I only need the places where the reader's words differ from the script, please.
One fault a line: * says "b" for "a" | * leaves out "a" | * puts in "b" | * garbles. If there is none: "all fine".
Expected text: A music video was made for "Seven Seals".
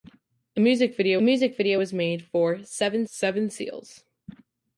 * puts in "music video"
* puts in "seven"